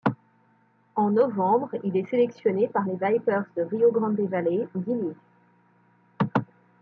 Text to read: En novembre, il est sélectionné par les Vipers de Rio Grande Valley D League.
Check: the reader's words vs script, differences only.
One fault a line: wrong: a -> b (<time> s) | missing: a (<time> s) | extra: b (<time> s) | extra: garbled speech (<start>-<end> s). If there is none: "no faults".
no faults